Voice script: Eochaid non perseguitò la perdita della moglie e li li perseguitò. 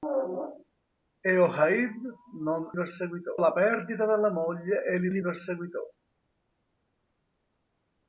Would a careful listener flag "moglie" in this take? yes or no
no